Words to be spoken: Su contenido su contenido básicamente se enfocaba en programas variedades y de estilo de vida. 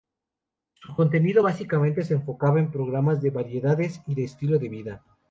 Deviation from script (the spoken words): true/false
true